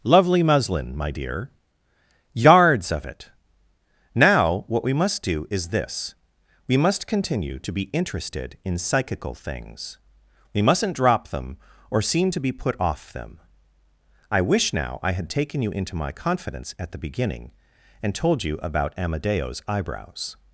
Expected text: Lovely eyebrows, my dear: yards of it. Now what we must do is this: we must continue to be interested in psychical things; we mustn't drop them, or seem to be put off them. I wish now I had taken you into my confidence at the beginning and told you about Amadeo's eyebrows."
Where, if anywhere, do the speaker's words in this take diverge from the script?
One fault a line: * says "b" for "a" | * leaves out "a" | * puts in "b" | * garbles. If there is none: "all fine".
* says "muslin" for "eyebrows"